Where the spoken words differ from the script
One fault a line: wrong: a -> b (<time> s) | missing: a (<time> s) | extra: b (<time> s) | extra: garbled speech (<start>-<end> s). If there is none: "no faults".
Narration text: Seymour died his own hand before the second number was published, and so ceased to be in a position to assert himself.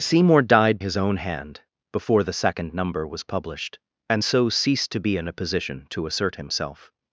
no faults